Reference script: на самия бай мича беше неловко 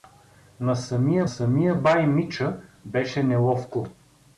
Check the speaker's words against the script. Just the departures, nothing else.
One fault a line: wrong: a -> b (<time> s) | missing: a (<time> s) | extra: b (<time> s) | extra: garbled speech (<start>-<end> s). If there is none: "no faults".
extra: самия (1.2 s)